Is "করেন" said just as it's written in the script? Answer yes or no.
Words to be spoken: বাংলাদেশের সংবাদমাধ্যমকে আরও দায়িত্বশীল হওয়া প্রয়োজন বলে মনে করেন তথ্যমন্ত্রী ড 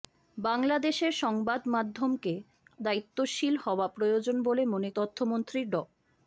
no